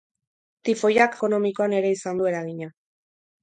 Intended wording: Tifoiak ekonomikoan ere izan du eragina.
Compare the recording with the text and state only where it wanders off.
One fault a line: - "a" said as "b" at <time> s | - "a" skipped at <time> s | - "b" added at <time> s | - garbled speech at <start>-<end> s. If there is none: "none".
none